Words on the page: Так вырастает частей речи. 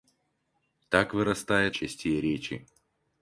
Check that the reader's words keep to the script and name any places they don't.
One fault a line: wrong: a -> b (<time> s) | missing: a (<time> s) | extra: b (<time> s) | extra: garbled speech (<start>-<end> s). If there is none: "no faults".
no faults